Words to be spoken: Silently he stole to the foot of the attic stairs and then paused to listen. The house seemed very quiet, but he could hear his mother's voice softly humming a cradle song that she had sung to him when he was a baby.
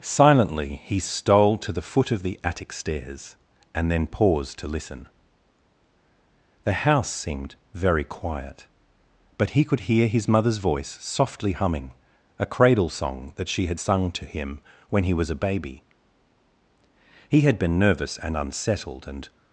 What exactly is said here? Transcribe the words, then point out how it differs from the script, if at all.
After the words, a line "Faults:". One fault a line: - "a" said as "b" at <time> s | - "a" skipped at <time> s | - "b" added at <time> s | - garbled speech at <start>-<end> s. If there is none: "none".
Silently he stole to the foot of the attic stairs and then paused to listen. The house seemed very quiet, but he could hear his mother's voice softly humming a cradle song that she had sung to him when he was a baby. He had been nervous and unsettled and
Faults:
- "He had been nervous and unsettled and" added at 17.3 s